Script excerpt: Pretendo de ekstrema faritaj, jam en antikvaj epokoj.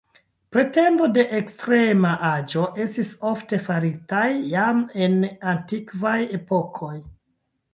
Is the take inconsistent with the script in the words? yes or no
yes